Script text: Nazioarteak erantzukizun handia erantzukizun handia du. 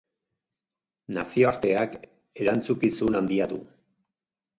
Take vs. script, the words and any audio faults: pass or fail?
fail